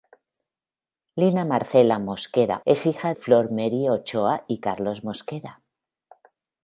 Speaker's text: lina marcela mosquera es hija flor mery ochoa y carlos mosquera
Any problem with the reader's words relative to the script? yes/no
no